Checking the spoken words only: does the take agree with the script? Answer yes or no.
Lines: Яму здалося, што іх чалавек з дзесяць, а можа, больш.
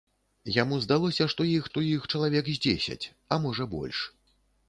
no